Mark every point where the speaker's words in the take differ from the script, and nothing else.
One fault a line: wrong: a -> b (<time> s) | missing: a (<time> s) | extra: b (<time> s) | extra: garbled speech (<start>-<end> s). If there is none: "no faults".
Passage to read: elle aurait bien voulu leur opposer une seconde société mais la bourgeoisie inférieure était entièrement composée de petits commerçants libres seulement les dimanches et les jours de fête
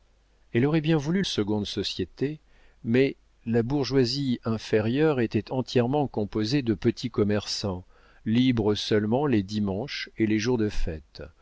missing: leur opposer une (1.2 s)